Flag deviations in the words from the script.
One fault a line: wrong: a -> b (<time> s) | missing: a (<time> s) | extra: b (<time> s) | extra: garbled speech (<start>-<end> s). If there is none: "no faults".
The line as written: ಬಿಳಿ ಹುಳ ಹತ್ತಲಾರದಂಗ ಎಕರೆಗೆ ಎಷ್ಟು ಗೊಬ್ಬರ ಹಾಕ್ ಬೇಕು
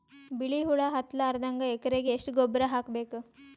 no faults